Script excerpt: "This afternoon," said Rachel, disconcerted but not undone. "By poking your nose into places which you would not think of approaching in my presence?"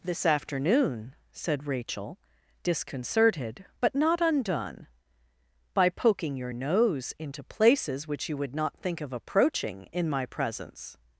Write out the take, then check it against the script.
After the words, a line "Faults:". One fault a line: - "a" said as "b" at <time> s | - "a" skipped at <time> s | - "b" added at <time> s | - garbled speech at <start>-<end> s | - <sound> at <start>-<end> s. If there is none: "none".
"This afternoon," said Rachel, disconcerted but not undone. "By poking your nose into places which you would not think of approaching in my presence?"
Faults:
none